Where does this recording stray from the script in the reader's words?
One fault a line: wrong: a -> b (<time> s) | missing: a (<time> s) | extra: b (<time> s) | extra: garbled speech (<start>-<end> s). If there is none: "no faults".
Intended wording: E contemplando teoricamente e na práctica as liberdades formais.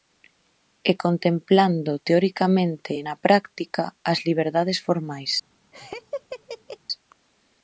no faults